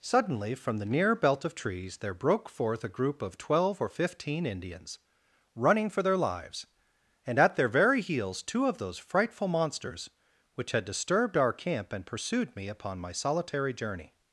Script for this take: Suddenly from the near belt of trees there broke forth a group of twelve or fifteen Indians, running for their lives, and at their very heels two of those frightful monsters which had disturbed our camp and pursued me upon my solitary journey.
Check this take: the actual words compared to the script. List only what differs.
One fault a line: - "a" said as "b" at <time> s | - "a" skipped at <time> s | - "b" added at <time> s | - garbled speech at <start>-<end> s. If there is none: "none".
none